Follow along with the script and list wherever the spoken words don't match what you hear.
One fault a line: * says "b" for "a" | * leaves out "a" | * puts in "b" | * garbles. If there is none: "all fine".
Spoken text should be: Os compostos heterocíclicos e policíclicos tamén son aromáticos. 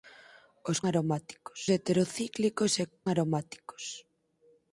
* says "aromáticos" for "compostos"
* leaves out "policíclicos tamén son"